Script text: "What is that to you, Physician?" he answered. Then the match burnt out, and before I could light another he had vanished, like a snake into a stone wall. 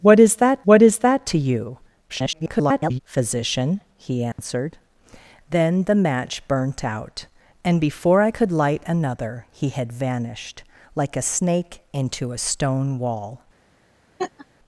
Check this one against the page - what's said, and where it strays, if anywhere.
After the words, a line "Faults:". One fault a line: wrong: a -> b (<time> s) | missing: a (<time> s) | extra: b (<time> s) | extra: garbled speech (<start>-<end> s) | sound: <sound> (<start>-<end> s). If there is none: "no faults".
"What is that what is that to you, [garbled] Physician?" he answered. Then the match burnt out, and before I could light another he had vanished, like a snake into a stone wall.
Faults:
extra: what is that (0.6 s)
extra: garbled speech (2.1-3.0 s)
sound: dropout (4.3-4.4 s)
sound: laugh (14.2-14.5 s)